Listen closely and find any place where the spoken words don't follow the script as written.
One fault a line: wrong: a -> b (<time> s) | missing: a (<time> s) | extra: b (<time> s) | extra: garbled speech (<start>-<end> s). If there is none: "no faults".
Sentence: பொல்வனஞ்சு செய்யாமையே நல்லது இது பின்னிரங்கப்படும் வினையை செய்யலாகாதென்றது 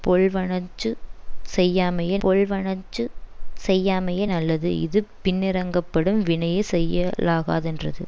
extra: பொல்வனஞ்சு செய்யாமையே (2.2 s)